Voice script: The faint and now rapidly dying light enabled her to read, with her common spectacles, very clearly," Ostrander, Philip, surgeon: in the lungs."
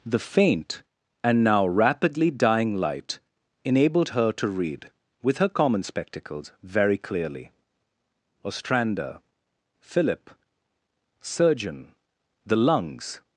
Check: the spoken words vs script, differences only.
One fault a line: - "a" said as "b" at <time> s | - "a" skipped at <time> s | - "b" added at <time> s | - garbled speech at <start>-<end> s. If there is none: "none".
- "in" skipped at 12.0 s